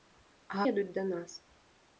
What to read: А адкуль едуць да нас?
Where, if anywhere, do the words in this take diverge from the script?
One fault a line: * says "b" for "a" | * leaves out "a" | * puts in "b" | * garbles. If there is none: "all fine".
* leaves out "адкуль"